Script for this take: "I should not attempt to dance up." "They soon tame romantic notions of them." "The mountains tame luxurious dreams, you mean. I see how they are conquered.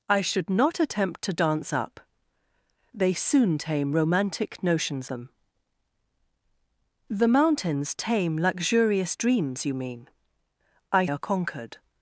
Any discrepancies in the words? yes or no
yes